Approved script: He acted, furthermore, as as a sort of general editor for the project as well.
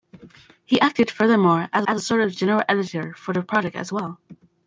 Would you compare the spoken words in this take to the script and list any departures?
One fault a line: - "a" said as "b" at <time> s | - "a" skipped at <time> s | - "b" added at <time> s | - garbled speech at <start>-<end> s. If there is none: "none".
none